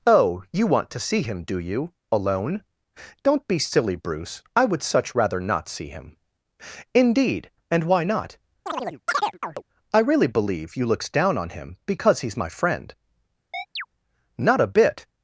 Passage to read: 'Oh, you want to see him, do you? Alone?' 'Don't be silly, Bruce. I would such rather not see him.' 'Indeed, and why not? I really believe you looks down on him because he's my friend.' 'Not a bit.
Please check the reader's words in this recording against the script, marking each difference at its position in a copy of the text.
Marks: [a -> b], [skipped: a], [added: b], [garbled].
'Oh, you want to see him, do you? Alone?' 'Don't be silly, Bruce. I would such rather not see him.' 'Indeed, and why not? I really believe you looks down on him because he's my friend.' 'Not a bit.